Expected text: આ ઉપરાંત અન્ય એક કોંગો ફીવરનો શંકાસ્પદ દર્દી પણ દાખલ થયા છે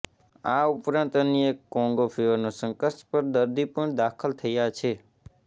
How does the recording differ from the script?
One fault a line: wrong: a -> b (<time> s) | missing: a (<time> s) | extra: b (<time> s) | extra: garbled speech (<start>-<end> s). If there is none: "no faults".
no faults